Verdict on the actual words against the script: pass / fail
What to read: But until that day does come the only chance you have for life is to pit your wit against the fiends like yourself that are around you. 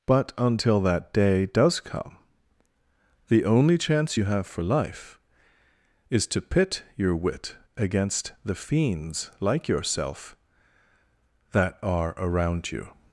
pass